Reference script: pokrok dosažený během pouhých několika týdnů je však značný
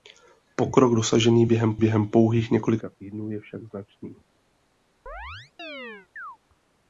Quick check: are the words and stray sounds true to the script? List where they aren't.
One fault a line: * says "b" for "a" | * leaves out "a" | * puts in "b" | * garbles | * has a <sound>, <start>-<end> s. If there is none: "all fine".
* puts in "během"
* has a chirp, 5.1-6.4 s